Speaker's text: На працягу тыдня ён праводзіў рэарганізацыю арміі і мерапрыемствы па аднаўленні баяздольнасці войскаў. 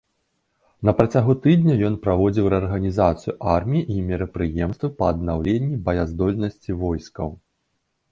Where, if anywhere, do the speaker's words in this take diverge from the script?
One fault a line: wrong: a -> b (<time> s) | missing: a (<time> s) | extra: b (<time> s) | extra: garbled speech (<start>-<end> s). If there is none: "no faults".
no faults